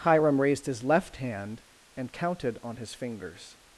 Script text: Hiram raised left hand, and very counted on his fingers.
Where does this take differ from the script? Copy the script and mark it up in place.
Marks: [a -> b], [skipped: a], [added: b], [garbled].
Hiram raised [added: his] left hand, and [skipped: very] counted on his fingers.